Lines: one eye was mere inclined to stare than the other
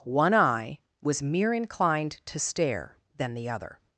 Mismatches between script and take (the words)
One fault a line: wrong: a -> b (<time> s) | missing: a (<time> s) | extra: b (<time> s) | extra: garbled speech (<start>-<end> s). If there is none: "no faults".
no faults